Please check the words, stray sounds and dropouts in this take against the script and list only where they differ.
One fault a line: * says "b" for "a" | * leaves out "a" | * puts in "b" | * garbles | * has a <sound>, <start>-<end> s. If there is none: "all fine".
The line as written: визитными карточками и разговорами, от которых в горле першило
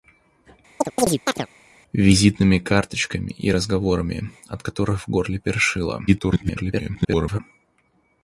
* has a chirp, 0.8-1.5 s
* garbles